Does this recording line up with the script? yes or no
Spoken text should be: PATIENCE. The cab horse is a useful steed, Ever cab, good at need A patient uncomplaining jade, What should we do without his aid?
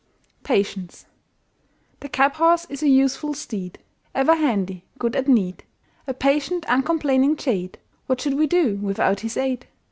no